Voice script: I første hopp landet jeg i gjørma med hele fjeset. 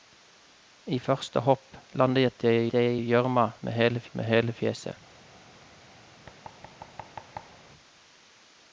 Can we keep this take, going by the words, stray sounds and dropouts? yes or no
no